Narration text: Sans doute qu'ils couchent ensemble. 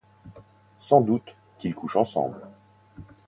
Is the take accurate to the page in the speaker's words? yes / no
yes